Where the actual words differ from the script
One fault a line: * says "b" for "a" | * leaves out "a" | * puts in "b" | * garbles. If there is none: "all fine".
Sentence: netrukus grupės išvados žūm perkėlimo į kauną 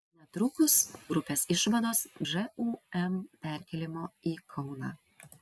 all fine